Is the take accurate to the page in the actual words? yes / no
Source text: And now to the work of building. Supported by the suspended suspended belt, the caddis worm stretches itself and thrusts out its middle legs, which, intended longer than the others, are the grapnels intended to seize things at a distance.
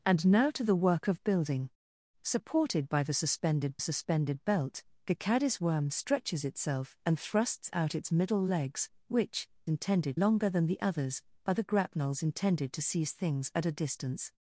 yes